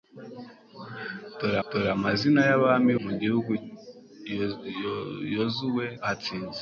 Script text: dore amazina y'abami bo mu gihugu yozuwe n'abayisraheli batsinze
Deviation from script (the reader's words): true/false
true